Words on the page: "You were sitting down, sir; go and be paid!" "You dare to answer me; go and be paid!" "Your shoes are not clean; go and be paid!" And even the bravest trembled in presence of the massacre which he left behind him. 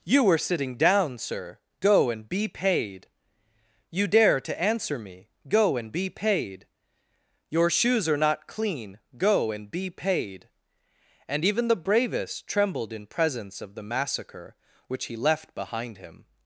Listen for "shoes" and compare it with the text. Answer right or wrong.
right